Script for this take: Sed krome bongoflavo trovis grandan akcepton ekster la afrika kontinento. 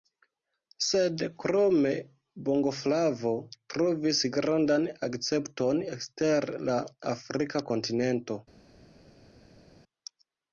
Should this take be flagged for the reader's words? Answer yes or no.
no